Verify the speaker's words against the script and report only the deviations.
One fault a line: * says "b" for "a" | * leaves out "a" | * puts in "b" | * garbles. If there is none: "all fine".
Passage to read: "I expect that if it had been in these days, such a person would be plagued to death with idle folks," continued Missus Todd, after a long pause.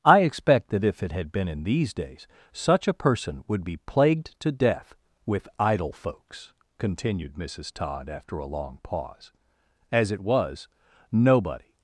* puts in "As it was nobody"